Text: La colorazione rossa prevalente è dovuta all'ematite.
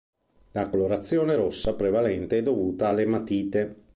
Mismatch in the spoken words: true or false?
false